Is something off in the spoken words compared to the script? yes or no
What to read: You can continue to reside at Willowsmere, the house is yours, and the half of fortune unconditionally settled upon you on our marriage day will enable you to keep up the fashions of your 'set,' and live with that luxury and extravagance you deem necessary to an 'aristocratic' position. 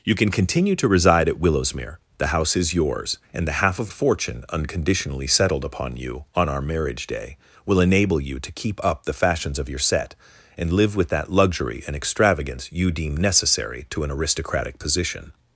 no